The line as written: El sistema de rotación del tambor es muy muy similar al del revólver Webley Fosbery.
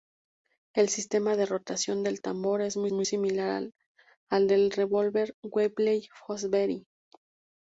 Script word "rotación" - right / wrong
right